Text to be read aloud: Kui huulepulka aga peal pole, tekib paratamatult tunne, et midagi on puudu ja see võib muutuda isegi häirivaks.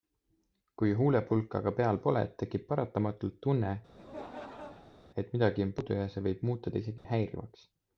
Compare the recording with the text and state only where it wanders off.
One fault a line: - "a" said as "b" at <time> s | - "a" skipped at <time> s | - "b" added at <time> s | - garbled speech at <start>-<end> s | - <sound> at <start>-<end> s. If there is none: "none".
- laugh at 3.9-5.1 s
- dropout at 7.0-7.0 s